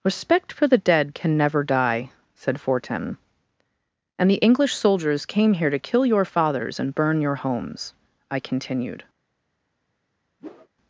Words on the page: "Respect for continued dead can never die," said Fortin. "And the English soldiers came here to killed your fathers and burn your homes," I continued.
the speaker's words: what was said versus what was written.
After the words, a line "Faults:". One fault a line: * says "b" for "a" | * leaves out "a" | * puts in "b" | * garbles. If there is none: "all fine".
"Respect for the dead can never die," said Fortin. "And the English soldiers came here to kill your fathers and burn your homes," I continued.
Faults:
* says "the" for "continued"
* says "kill" for "killed"